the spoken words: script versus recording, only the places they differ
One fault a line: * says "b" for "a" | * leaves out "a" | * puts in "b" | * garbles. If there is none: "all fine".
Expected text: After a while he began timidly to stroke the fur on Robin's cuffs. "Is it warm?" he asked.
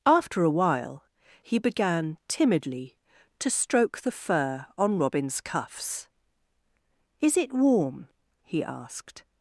all fine